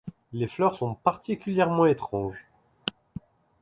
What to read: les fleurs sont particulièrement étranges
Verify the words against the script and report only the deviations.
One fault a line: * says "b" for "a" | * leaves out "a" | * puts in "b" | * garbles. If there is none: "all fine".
all fine